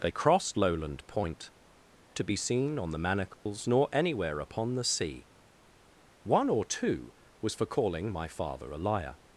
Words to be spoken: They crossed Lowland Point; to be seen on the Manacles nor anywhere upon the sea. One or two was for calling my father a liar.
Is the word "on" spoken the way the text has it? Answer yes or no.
yes